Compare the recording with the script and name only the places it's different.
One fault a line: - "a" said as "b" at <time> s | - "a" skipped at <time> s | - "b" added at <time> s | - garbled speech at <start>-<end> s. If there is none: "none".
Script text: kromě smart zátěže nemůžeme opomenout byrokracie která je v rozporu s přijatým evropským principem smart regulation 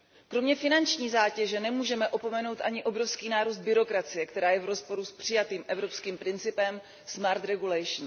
- "smart" said as "finanční" at 0.6 s
- "ani obrovský nárůst" added at 2.6 s